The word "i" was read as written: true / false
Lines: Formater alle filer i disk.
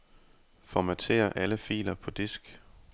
false